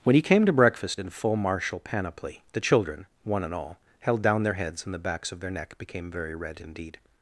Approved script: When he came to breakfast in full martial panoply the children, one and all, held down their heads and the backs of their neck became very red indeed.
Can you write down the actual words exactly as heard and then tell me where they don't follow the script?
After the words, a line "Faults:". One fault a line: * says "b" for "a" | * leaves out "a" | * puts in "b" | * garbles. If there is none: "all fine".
When he came to breakfast in full martial panoply the children, one and all, held down their heads and the backs of their neck became very red indeed.
Faults:
all fine